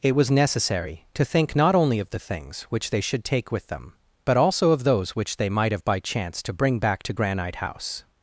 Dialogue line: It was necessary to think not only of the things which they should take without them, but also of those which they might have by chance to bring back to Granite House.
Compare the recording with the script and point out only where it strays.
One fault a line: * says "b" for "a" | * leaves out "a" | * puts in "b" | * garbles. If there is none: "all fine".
* says "with" for "without"